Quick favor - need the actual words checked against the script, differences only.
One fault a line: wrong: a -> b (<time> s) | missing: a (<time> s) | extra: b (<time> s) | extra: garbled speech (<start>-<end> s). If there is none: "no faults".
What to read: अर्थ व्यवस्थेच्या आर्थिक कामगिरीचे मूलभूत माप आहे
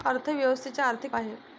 missing: कामगिरीचे मूलभूत माप (1.1 s)